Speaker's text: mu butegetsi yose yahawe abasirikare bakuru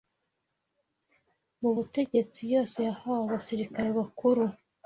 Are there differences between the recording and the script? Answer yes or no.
no